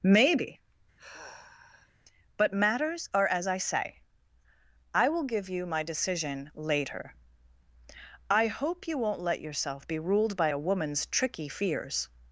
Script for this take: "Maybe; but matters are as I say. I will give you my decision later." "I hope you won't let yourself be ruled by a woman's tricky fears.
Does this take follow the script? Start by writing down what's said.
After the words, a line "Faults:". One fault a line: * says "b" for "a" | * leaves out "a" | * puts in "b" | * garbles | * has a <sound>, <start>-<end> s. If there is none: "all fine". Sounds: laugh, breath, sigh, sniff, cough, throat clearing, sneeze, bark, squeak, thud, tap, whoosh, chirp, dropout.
"Maybe; but matters are as I say. I will give you my decision later." "I hope you won't let yourself be ruled by a woman's tricky fears.
Faults:
* has a sigh, 1.0-1.9 s